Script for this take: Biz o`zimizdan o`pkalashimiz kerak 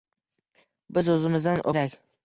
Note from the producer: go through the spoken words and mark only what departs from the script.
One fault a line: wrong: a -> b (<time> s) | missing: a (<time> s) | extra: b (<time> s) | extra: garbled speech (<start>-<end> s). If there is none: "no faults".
missing: o`pkalashimiz (1.6 s)